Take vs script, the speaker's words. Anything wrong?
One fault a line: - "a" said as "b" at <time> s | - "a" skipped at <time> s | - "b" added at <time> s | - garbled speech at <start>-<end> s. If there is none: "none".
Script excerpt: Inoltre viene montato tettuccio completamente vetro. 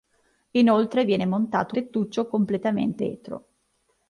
none